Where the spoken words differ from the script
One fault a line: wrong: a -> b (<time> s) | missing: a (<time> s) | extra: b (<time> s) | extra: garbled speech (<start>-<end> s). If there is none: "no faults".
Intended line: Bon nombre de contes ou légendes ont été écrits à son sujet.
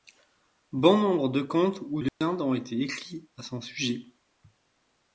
no faults